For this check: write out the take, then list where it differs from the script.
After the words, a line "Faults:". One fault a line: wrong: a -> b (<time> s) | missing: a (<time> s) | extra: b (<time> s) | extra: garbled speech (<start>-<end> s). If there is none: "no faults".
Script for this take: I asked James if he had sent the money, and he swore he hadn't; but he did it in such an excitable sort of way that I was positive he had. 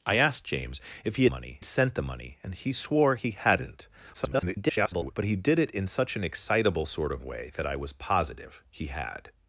I asked James if he money sent the money, and he swore he hadn't; [garbled] but he did it in such an excitable sort of way that I was positive he had.
Faults:
wrong: had -> money (1.3 s)
extra: garbled speech (4.1-5.1 s)